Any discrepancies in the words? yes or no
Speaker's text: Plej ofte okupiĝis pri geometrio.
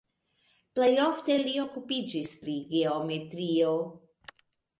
yes